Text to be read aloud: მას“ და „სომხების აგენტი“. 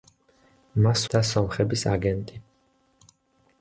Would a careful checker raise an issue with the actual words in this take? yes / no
no